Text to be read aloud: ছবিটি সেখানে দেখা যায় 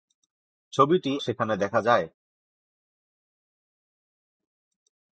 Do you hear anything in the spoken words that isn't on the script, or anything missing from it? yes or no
no